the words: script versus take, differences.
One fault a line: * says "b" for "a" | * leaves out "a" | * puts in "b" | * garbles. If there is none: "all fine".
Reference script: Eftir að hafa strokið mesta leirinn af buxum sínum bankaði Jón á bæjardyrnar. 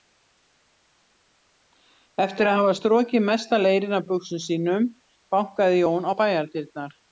all fine